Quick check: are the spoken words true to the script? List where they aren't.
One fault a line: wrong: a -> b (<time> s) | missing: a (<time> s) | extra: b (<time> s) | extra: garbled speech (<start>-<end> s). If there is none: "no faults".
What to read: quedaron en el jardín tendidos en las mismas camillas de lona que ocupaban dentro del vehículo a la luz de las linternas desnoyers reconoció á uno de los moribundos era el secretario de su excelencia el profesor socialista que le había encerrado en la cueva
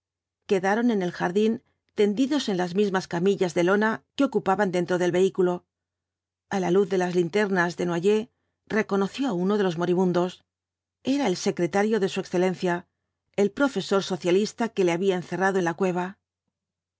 no faults